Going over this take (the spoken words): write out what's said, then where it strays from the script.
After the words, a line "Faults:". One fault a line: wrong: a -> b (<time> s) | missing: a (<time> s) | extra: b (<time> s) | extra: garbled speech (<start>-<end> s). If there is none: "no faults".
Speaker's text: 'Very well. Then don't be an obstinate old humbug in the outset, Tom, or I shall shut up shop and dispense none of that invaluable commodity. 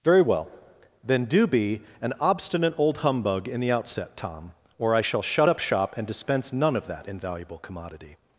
'Very well. Then do be an obstinate old humbug in the outset, Tom, or I shall shut up shop and dispense none of that invaluable commodity.
Faults:
wrong: don't -> do (1.2 s)